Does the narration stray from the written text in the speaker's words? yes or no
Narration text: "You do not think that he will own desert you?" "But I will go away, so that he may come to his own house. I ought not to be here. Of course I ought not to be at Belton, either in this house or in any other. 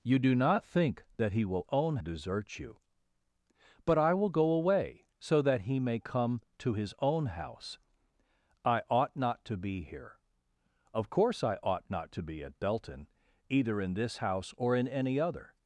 no